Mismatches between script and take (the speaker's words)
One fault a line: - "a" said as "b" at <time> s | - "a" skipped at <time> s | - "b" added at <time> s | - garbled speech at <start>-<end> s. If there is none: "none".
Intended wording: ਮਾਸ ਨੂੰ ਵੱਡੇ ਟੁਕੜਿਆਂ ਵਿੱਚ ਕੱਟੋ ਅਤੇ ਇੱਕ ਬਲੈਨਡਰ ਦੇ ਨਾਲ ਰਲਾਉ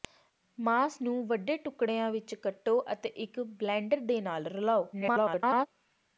- garbled speech at 4.9-5.7 s